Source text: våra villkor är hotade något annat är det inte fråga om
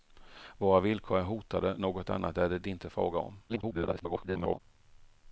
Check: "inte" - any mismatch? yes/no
no